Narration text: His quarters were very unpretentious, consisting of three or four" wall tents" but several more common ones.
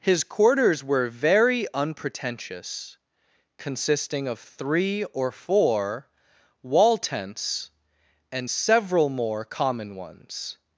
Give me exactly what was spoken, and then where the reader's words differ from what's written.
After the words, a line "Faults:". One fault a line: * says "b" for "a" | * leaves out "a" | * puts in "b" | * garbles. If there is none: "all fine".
His quarters were very unpretentious, consisting of three or four" wall tents" and several more common ones.
Faults:
* says "and" for "but"